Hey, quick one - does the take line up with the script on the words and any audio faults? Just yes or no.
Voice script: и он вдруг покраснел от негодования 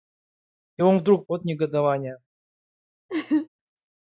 no